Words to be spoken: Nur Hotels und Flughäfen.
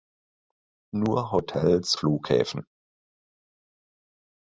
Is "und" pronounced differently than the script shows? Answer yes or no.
yes